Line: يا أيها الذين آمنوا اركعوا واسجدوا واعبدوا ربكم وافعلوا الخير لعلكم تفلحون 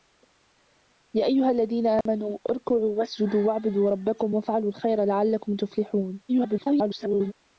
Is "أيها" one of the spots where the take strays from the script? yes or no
no